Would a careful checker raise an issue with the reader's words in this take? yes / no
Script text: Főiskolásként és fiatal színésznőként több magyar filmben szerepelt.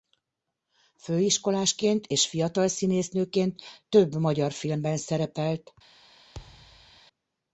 no